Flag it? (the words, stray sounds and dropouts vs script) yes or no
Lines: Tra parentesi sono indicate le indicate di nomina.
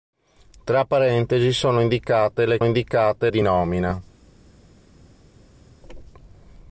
no